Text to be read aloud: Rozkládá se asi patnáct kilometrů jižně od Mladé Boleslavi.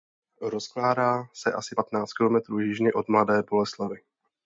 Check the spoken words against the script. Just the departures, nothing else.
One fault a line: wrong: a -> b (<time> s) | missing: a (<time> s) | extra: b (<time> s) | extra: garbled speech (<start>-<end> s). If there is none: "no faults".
no faults